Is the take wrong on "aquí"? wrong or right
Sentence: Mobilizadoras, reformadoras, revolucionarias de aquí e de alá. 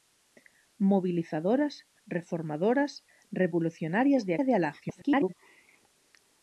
wrong